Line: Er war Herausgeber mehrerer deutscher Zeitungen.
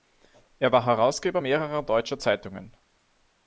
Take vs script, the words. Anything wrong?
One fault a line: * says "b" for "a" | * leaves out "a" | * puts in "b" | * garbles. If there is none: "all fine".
all fine